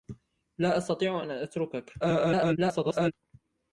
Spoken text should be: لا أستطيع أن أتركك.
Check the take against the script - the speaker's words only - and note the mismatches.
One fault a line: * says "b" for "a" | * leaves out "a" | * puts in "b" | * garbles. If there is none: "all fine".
* garbles